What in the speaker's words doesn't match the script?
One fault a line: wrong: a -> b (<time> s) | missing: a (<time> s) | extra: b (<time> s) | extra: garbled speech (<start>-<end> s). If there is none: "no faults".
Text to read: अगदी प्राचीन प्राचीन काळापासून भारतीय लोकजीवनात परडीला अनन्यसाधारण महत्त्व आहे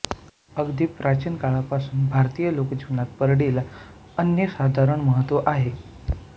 missing: प्राचीन (1.4 s)